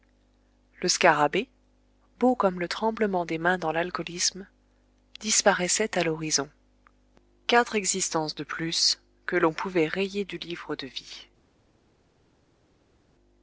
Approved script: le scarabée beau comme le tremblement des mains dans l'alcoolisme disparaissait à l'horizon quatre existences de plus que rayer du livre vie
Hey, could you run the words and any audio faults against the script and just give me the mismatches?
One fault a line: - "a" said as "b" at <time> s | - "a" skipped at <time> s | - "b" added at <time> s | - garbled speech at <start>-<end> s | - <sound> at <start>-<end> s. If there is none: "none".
- "l'on pouvait" added at 9.3 s
- "de" added at 10.8 s